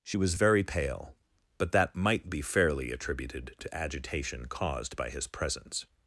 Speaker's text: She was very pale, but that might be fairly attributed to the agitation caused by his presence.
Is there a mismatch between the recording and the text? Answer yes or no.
yes